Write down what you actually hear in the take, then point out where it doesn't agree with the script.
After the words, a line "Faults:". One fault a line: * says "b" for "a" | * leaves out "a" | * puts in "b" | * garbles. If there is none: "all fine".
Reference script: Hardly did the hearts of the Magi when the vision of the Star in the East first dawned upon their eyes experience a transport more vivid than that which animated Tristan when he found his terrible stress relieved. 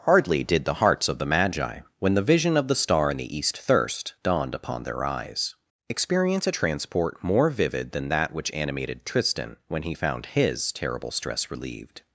Hardly did the hearts of the Magi when the vision of the Star in the East thirst dawned upon their eyes experience a transport more vivid than that which animated Tristan when he found his terrible stress relieved.
Faults:
* says "thirst" for "first"